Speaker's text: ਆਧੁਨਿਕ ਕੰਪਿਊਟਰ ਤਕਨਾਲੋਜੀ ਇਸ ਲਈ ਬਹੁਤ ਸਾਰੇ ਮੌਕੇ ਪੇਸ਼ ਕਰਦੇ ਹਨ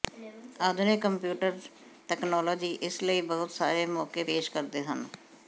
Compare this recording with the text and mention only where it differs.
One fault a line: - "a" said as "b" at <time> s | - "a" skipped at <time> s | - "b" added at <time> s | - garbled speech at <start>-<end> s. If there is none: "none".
none